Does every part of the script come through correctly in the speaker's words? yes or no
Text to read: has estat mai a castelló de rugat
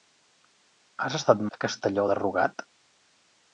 no